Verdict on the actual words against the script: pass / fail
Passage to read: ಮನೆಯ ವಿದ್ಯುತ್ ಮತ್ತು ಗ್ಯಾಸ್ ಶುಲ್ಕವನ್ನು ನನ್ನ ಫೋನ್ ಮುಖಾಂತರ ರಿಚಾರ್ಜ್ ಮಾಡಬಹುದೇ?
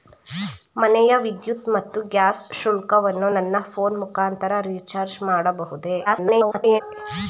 fail